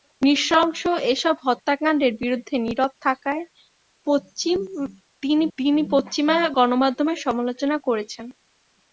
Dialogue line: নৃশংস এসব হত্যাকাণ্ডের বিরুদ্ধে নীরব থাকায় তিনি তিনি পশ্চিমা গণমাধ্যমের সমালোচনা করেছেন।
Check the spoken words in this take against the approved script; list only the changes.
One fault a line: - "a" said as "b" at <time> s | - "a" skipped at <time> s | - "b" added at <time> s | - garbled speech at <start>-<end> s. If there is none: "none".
none